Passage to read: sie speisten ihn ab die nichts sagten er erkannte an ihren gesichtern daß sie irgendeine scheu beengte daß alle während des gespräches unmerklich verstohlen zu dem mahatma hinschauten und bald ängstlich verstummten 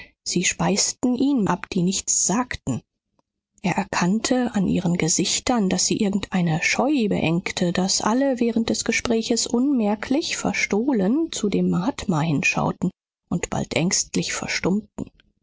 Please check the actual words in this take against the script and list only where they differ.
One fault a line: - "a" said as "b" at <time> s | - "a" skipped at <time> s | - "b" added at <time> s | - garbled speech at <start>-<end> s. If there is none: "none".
none